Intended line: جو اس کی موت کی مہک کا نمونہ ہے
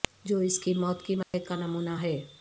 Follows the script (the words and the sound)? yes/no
no